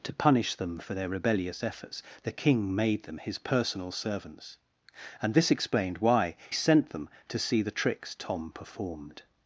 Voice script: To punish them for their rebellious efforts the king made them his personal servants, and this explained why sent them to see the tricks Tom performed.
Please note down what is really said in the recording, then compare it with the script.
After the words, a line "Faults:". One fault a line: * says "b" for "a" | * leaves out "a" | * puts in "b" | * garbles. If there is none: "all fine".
To punish them for their rebellious efforts the king made them his personal servants, and this explained why sent them to see the tricks Tom performed.
Faults:
all fine